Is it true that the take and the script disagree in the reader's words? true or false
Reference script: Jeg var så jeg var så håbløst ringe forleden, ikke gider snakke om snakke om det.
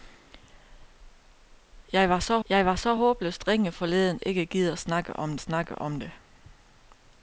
false